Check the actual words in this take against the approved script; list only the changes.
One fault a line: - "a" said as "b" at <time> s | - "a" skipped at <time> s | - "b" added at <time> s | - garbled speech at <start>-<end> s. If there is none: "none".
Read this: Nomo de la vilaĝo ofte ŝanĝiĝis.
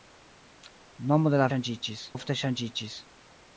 - "vilaĝo" said as "ŝanĝiĝis" at 1.5 s